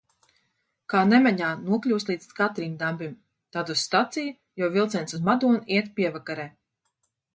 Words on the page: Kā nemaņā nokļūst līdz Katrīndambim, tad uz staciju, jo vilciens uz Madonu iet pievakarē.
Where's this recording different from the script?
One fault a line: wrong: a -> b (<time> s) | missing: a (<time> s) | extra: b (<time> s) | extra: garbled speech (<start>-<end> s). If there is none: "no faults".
no faults